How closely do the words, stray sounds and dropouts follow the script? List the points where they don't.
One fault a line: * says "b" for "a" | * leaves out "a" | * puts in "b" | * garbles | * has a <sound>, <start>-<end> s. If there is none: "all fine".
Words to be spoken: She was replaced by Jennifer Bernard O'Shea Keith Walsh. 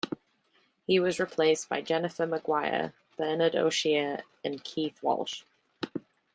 * says "He" for "She"
* puts in "Maguire"
* puts in "and"